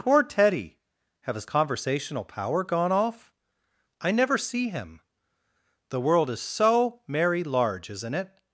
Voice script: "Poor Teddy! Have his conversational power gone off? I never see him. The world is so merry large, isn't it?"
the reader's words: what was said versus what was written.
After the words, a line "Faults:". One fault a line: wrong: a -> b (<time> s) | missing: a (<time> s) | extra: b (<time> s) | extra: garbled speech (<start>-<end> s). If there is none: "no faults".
"Poor Teddy! Have his conversational power gone off? I never see him. The world is so merry large, isn't it?"
Faults:
no faults